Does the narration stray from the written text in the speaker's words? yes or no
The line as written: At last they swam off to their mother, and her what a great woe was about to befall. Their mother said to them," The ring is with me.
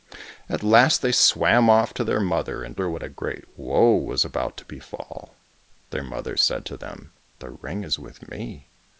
no